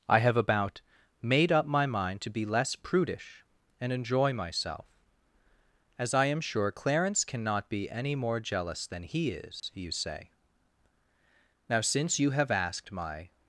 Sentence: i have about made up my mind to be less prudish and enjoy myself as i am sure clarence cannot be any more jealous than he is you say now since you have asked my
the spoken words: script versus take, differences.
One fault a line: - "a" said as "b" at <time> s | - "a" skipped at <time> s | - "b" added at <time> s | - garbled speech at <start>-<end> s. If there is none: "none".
none